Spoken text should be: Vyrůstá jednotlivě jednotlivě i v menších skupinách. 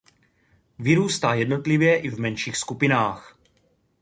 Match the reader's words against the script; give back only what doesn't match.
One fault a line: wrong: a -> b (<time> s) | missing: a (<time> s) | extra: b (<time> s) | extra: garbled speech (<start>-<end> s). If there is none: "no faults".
missing: jednotlivě (2.0 s)